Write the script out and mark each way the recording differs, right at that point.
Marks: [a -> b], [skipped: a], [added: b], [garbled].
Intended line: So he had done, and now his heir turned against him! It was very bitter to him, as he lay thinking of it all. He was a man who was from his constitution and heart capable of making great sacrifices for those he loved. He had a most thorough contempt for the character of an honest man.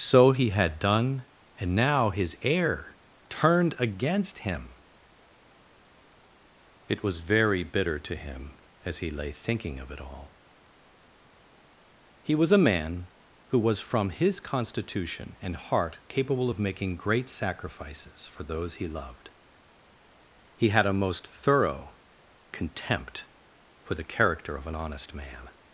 So he had done, and now his heir turned against him! It was very bitter to him, as he lay thinking of it all. He was a man who was from his constitution and heart capable of making great sacrifices for those he loved. He had a most thorough contempt for the character of an honest man.